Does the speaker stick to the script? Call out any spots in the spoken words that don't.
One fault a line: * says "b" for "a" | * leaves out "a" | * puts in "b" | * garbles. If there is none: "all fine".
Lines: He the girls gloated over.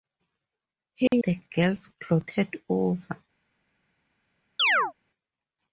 all fine